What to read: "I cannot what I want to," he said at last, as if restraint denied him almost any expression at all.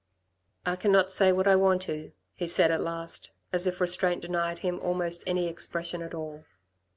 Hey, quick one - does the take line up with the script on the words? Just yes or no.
no